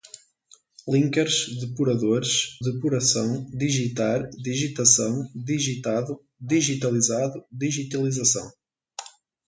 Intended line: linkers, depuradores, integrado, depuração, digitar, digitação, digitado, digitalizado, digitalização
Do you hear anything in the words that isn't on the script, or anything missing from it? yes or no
yes